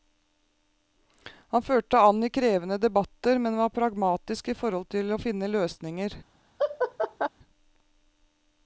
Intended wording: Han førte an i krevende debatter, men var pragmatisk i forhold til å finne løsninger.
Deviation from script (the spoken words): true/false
false